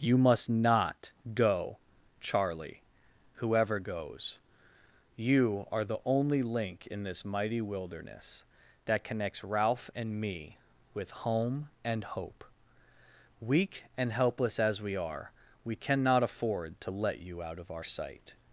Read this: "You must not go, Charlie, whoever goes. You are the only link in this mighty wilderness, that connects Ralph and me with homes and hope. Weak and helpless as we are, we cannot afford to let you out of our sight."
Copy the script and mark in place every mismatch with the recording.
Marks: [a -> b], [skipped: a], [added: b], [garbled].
"You must not go, Charlie, whoever goes. You are the only link in this mighty wilderness, that connects Ralph and me with [homes -> home] and hope. Weak and helpless as we are, we cannot afford to let you out of our sight."